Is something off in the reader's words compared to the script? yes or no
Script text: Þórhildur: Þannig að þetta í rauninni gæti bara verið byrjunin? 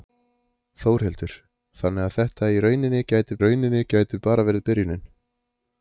yes